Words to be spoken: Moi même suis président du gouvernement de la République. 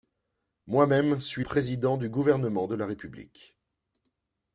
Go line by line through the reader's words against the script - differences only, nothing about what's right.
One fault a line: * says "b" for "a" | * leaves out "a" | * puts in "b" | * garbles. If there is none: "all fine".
all fine